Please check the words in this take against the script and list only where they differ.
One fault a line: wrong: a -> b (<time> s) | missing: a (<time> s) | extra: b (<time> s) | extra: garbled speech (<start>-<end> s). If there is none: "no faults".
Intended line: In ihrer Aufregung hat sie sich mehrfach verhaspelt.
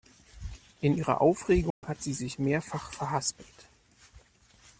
no faults